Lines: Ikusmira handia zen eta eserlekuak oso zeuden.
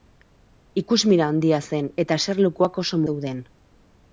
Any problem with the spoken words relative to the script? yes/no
no